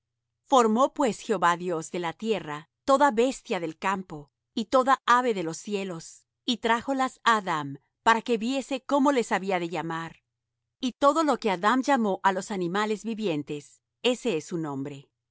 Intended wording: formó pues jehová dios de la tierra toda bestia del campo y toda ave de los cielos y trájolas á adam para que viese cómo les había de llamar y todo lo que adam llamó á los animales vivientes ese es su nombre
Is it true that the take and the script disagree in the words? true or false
false